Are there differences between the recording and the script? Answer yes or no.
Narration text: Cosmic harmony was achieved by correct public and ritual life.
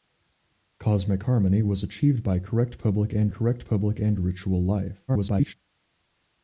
yes